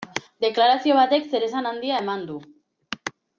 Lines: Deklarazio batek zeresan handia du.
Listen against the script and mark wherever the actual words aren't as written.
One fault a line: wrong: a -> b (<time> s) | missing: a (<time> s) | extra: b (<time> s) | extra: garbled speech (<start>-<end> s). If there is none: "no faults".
extra: eman (2.0 s)